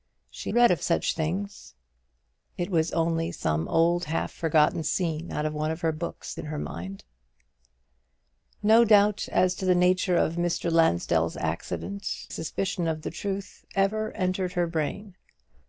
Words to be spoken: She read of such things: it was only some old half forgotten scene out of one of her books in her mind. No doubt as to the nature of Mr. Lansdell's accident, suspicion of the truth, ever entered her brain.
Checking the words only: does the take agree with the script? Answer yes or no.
yes